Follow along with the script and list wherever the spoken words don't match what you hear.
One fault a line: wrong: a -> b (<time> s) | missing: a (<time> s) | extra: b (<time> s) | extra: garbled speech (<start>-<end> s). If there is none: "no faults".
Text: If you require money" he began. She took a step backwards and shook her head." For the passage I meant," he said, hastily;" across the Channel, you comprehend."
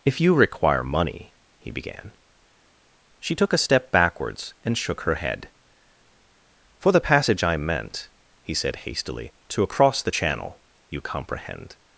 extra: to (9.5 s)